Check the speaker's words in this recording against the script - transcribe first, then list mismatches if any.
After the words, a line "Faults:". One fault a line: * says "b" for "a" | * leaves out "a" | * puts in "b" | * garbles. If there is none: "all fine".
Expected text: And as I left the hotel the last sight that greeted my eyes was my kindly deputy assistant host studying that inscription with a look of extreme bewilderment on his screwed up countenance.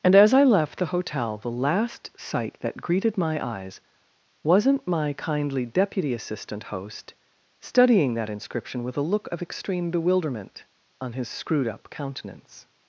And as I left the hotel the last sight that greeted my eyes wasn't my kindly deputy assistant host studying that inscription with a look of extreme bewilderment on his screwed up countenance.
Faults:
* says "wasn't" for "was"